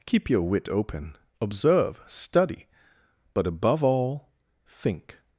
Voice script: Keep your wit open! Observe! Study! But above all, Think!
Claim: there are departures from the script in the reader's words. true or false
false